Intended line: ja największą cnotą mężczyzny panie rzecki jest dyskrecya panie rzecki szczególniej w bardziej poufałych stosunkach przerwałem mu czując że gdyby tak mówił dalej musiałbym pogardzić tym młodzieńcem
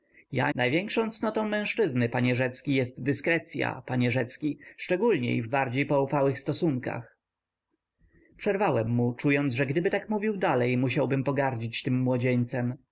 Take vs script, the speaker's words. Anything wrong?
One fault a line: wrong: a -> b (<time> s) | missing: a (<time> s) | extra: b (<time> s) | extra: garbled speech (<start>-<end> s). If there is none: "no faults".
no faults